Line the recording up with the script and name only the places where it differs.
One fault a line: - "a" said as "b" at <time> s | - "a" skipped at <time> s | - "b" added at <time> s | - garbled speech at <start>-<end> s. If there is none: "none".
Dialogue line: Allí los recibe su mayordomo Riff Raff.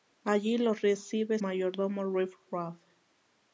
- "su" skipped at 1.4 s